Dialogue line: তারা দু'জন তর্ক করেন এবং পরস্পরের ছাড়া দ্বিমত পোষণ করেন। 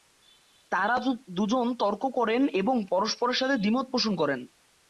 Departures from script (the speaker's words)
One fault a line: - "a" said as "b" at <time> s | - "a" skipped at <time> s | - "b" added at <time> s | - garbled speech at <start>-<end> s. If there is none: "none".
- "ছাড়া" said as "সাথে" at 3.4 s